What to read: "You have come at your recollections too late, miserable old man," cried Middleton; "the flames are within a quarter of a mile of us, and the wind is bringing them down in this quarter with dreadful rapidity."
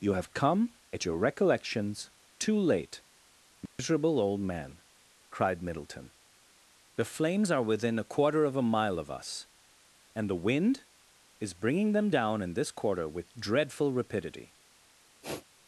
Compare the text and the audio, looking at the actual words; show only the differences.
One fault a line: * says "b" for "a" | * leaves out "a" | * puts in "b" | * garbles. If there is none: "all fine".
all fine